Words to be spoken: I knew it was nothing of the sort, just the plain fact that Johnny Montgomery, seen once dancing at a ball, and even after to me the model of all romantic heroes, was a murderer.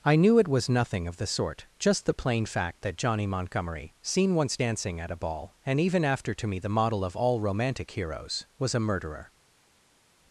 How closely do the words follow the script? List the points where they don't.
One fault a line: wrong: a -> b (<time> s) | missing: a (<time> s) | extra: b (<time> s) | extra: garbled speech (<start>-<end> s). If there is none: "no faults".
no faults